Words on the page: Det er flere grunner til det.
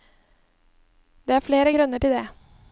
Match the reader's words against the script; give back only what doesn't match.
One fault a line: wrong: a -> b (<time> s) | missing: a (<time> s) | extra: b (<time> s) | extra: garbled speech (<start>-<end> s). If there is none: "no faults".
no faults